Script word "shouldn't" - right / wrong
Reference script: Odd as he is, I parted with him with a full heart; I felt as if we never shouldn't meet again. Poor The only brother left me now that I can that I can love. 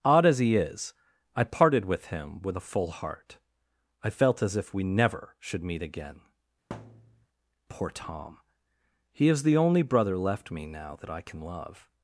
wrong